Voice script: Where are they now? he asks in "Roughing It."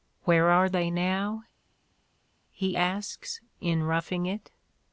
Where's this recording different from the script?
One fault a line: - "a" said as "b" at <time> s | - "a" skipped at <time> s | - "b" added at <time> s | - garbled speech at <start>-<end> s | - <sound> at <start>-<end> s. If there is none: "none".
none